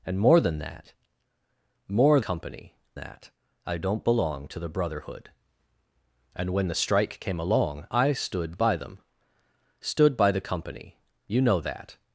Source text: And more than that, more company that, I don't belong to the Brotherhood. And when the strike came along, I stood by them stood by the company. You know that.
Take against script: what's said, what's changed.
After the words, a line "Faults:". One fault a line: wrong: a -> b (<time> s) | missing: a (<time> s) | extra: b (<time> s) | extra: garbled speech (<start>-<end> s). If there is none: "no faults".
And more than that, more company that, I don't belong to the Brotherhood. And when the strike came along, I stood by them stood by the company. You know that.
Faults:
no faults